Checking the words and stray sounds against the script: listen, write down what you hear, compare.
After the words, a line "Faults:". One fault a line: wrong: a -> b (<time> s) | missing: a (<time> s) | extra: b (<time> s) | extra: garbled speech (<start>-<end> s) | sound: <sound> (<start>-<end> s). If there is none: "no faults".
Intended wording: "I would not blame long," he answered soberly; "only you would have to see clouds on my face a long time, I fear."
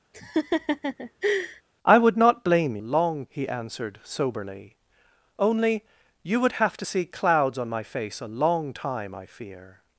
"I would not blame long," he answered soberly; "only you would have to see clouds on my face a long time, I fear."
Faults:
sound: laugh (0.1-1.6 s)